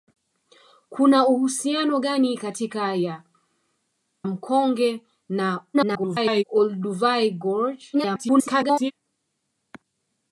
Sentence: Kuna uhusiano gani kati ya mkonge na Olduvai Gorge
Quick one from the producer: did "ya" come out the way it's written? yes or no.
no